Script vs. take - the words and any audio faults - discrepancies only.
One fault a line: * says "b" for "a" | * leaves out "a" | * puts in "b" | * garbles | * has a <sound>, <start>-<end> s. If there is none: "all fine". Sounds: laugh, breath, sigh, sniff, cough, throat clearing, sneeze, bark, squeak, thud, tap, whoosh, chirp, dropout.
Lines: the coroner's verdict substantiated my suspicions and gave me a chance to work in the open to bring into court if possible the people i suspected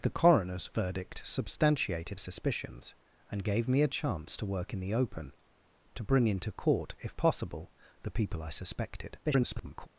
* leaves out "my"
* garbles